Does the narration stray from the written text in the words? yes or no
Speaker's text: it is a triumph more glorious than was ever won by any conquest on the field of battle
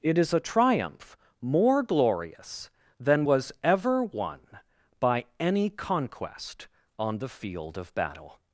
no